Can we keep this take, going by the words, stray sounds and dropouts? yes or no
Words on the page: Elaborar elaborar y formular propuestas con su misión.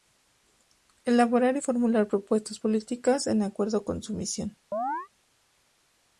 no